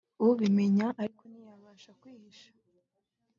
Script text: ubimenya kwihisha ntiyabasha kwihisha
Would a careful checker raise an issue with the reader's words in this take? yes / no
yes